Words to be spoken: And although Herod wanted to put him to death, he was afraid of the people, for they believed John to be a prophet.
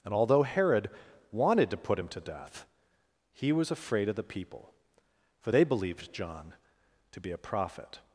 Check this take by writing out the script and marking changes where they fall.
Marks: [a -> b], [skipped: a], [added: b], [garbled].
And although Herod wanted to put him to death, he was afraid of the people, for they believed John to be a prophet.